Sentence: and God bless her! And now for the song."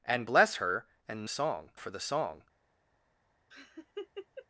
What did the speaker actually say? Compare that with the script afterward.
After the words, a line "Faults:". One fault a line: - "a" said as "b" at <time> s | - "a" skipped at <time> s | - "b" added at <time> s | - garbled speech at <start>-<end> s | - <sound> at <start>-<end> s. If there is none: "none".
and Bless her! And song for the song."
Faults:
- "God" skipped at 0.3 s
- "now" said as "song" at 1.3 s
- laugh at 3.5-4.5 s